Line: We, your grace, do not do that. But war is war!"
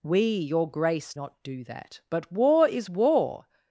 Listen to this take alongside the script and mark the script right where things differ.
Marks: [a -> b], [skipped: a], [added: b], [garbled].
We, your grace, [skipped: do] not do that. But war is war!"